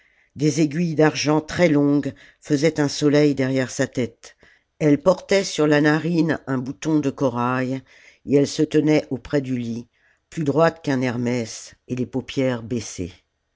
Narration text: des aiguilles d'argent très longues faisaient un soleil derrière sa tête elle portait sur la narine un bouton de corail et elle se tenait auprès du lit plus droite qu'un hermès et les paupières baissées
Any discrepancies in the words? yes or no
no